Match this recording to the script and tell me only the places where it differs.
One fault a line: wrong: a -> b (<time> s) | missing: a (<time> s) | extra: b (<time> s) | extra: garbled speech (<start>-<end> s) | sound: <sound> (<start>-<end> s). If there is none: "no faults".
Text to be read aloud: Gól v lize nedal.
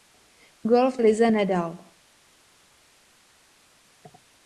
no faults